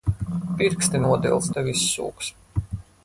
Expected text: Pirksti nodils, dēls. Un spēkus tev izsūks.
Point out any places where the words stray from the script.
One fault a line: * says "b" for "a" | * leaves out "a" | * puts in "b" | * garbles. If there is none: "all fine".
* leaves out "dēls Un spēkus"